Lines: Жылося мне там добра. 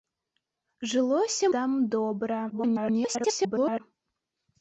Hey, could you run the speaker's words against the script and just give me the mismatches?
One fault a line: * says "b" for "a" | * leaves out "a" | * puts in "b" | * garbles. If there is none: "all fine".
* leaves out "мне"
* garbles